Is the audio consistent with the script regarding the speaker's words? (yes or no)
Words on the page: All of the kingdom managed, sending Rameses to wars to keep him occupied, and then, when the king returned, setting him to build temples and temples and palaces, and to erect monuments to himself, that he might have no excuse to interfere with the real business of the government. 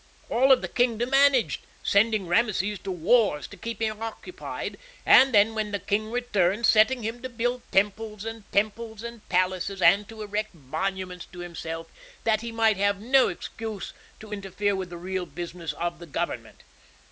yes